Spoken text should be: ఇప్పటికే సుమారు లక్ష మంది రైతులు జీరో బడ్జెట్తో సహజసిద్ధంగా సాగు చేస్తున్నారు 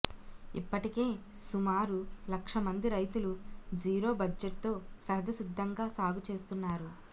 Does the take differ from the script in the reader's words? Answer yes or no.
no